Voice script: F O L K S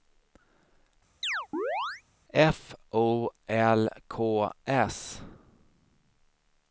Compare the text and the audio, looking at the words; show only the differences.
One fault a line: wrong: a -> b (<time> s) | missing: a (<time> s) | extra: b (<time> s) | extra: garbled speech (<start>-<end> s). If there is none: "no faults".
no faults